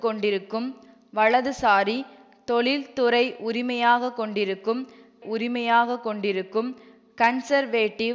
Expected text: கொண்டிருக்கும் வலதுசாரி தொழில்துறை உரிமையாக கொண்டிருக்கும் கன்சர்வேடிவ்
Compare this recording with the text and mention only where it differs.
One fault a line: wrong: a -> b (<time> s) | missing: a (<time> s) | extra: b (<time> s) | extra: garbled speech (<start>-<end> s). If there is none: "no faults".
extra: உரிமையாக கொண்டிருக்கும் (5.2 s)